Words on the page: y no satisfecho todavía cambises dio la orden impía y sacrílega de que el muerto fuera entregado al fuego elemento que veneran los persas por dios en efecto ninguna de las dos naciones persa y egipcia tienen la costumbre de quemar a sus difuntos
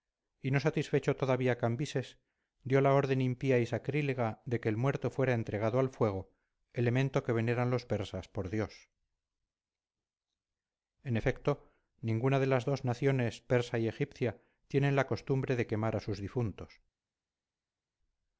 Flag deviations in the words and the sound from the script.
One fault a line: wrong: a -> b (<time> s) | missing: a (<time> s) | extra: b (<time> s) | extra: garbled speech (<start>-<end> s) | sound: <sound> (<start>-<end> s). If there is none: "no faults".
no faults